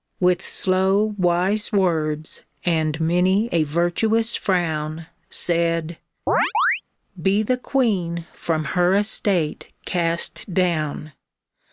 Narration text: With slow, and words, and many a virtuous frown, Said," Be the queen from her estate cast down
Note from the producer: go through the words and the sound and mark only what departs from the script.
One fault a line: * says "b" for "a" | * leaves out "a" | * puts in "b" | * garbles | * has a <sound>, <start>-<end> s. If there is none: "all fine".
* says "wise" for "and"
* has a chirp, 6.3-6.8 s